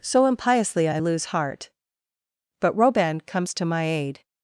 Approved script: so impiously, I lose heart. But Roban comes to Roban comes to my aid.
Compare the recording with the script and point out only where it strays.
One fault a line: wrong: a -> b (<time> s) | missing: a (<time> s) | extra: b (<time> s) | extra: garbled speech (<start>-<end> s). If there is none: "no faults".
missing: Roban comes to (3.7 s)